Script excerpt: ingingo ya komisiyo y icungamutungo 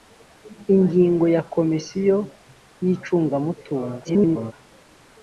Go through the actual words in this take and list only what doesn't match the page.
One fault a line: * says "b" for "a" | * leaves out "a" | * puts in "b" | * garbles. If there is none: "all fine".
* garbles